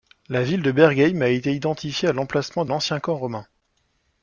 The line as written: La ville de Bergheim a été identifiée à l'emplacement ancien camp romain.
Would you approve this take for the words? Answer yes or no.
yes